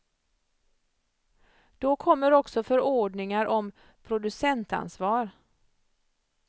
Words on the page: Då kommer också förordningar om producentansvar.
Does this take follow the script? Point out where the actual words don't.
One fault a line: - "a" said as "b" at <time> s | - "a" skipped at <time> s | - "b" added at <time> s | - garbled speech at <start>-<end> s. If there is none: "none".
none